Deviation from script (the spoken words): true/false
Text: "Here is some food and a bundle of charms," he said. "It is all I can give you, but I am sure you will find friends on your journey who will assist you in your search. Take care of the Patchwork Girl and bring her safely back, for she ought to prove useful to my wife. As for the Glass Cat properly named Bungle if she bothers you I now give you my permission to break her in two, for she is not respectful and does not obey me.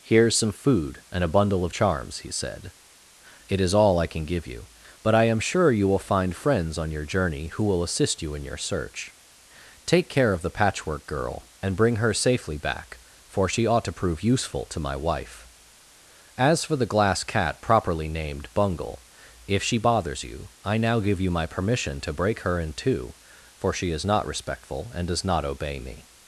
false